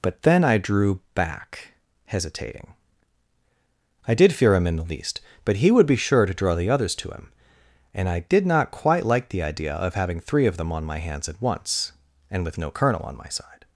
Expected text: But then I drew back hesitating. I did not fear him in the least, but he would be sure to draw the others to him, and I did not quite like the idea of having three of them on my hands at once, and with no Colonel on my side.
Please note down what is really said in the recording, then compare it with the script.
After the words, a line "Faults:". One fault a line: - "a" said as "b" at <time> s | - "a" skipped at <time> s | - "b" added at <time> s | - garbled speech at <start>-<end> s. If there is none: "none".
But then I drew back hesitating. I did fear him in the least, but he would be sure to draw the others to him, and I did not quite like the idea of having three of them on my hands at once, and with no Colonel on my side.
Faults:
- "not" skipped at 4.3 s